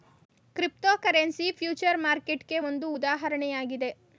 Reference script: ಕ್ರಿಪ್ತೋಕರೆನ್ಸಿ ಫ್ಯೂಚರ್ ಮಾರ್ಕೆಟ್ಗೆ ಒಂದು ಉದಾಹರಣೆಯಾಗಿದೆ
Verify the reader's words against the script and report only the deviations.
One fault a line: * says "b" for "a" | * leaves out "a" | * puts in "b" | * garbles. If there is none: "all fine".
all fine